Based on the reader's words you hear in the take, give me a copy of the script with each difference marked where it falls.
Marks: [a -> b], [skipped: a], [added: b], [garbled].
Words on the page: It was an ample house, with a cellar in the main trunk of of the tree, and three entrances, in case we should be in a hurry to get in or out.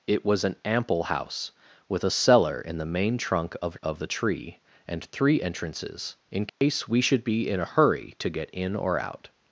It was an ample house, with a cellar in the main trunk of of the tree, and three entrances, in case we should be in a hurry to get in or out.